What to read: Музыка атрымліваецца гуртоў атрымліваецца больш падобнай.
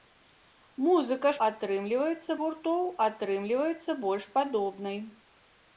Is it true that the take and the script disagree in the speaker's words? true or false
false